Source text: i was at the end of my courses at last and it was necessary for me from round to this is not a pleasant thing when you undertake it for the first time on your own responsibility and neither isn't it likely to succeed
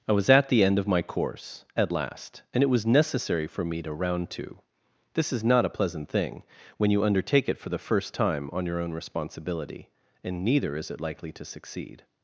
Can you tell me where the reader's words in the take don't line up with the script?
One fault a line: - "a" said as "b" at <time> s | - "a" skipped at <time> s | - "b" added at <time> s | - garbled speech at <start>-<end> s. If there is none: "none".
- "courses" said as "course" at 1.0 s
- "from" said as "to" at 3.8 s
- "isn't" said as "is" at 10.7 s